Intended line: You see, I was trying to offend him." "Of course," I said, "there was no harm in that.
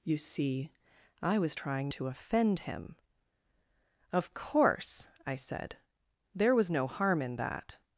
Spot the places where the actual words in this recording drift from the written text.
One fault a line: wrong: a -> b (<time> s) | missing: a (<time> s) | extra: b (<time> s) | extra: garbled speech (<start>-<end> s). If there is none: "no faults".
no faults